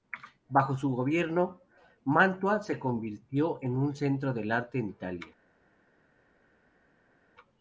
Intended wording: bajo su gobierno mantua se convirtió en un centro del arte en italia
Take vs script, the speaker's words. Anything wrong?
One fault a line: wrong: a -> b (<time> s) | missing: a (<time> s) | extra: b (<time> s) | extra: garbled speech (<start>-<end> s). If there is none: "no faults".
no faults